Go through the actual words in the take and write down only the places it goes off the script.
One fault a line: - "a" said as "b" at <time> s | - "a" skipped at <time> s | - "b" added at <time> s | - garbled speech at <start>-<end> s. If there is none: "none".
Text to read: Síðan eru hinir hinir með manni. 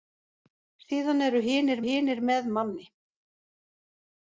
none